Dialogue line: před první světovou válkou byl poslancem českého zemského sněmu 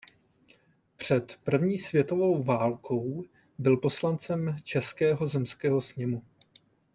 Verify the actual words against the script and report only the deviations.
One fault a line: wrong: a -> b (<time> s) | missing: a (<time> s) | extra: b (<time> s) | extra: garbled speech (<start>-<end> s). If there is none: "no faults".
no faults